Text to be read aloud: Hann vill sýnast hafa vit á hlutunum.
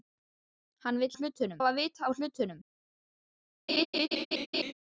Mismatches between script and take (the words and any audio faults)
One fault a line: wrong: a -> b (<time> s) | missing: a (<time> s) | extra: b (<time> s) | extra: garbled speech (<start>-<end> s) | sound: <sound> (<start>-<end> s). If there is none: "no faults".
wrong: sýnast -> hlutunum (1.1 s)
sound: laugh (3.7-4.7 s)